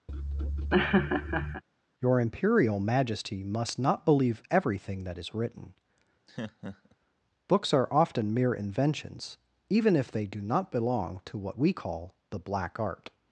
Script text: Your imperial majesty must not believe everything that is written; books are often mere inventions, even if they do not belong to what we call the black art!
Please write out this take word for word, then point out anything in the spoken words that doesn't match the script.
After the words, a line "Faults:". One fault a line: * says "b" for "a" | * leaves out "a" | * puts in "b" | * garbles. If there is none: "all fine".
Your imperial majesty must not believe everything that is written; books are often mere inventions, even if they do not belong to what we call the black art!
Faults:
all fine